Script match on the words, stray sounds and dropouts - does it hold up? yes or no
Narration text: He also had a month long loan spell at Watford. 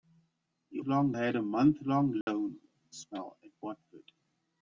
no